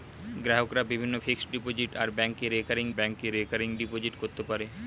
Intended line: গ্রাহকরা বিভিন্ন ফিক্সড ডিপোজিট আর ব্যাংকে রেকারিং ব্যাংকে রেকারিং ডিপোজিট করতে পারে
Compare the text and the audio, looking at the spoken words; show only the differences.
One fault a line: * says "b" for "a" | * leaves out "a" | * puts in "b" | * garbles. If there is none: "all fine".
all fine